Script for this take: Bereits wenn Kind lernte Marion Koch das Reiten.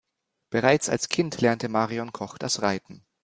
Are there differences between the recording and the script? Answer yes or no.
yes